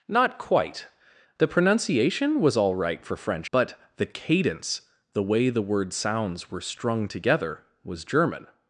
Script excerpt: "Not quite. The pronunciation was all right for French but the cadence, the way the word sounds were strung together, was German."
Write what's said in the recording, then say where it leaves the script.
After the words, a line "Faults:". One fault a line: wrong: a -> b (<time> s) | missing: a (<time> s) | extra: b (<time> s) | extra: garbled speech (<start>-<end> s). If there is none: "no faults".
"Not quite. The pronunciation was all right for French but the cadence, the way the word sounds were strung together, was German."
Faults:
no faults